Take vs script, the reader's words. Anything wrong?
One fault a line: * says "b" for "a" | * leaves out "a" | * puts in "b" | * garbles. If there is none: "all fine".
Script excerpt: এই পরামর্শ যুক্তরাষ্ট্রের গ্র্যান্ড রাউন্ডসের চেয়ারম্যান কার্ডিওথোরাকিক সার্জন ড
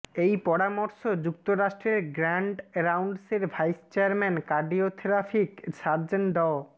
* puts in "ভাইস"